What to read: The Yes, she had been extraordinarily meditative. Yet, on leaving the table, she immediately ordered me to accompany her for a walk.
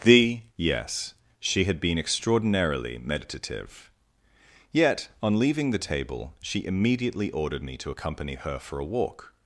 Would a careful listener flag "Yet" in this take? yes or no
no